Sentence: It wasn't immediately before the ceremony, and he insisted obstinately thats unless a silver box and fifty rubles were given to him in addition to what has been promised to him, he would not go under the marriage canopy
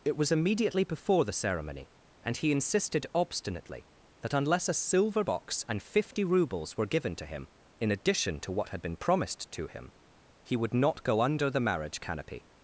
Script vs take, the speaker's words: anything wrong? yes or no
yes